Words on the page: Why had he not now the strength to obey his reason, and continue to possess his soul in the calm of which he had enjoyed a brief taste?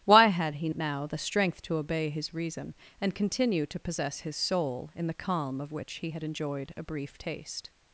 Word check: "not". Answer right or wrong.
wrong